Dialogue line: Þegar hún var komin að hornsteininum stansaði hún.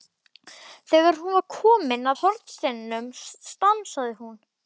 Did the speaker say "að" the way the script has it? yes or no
no